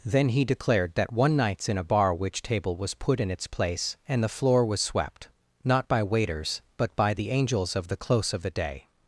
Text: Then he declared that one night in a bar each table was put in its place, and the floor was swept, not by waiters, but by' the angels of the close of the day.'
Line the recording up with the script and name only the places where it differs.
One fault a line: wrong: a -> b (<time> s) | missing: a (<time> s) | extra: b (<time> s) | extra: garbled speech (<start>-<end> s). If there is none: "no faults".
wrong: night -> nights (1.4 s)
wrong: each -> which (2.1 s)